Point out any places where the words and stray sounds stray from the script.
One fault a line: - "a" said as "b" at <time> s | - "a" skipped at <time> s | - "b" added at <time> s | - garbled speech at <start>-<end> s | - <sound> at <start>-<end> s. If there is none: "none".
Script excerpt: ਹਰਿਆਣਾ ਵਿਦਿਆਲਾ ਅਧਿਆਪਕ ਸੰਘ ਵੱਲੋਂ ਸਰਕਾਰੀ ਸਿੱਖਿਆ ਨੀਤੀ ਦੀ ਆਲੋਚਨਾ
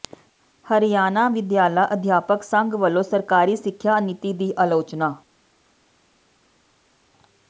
none